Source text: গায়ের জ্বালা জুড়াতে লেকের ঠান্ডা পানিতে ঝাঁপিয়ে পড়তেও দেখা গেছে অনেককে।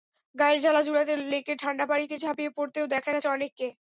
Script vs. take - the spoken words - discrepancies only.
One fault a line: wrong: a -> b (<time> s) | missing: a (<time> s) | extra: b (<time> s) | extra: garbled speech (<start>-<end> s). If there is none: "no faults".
no faults